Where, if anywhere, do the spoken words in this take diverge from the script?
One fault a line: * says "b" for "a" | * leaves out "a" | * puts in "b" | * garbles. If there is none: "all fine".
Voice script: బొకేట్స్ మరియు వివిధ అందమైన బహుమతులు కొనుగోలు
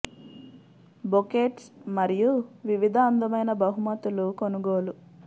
all fine